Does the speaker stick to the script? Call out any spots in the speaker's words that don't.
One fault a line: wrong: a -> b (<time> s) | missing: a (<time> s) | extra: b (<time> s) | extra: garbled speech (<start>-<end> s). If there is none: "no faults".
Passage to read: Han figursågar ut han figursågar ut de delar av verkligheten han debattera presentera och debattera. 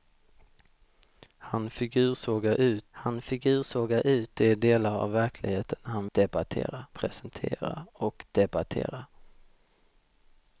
no faults